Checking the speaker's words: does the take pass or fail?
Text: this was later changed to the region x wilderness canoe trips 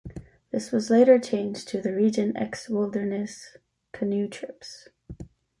pass